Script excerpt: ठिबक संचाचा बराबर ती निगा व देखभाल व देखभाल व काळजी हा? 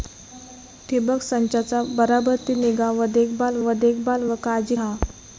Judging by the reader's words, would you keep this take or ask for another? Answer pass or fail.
pass